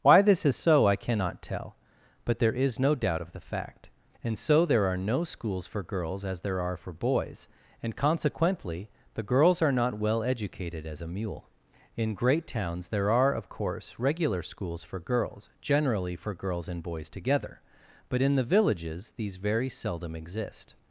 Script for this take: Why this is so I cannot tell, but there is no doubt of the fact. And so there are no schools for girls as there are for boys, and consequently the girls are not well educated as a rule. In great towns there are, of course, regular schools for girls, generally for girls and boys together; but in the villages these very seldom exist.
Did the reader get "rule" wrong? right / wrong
wrong